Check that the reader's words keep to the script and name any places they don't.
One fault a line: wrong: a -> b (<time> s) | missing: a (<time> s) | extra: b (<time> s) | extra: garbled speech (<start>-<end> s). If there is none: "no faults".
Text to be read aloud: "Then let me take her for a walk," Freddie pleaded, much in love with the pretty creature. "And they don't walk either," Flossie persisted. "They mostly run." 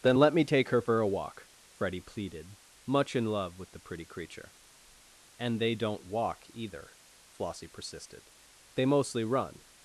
no faults